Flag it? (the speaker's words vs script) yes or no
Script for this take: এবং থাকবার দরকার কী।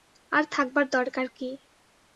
yes